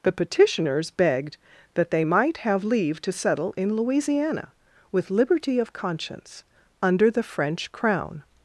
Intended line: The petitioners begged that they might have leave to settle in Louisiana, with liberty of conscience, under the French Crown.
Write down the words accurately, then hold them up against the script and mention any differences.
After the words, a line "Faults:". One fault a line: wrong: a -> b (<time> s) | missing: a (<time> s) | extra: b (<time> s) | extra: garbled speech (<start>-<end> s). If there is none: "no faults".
The petitioners begged that they might have leave to settle in Louisiana, with liberty of conscience, under the French Crown.
Faults:
no faults